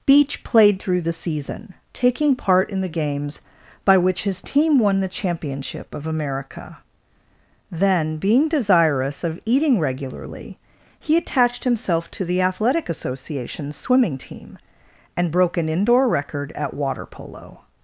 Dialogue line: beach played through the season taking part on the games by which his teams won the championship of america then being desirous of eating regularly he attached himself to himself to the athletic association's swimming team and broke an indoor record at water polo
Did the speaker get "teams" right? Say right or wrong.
wrong